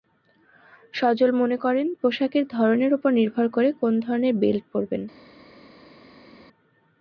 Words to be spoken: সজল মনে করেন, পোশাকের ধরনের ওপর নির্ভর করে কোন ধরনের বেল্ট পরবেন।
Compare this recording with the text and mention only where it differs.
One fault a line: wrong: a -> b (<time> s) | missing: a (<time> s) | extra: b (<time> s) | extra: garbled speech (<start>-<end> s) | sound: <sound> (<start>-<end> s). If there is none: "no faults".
no faults